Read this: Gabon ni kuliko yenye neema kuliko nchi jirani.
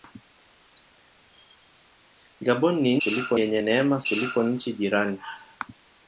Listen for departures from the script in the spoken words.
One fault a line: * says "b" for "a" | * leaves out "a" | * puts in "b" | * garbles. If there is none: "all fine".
all fine